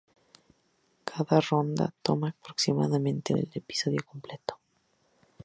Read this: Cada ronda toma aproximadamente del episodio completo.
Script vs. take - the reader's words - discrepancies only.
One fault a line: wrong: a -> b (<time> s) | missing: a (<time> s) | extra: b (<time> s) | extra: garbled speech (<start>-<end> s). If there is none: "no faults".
no faults